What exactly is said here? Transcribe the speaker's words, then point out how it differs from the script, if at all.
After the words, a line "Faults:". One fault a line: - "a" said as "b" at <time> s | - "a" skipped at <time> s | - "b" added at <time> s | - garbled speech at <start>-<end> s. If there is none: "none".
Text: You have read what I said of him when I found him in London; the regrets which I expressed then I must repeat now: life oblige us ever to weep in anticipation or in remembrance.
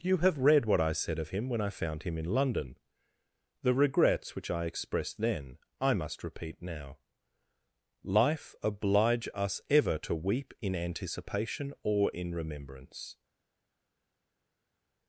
You have read what I said of him when I found him in London; the regrets which I expressed then I must repeat now: life oblige us ever to weep in anticipation or in remembrance.
Faults:
none